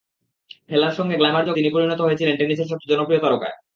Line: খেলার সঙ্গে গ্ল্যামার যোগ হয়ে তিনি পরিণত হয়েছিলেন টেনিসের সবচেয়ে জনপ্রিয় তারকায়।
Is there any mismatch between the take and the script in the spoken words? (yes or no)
yes